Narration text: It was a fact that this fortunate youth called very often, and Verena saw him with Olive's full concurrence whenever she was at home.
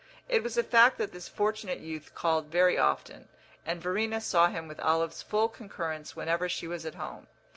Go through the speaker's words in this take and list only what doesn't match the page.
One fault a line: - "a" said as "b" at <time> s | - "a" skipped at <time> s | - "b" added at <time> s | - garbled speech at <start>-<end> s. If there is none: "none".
none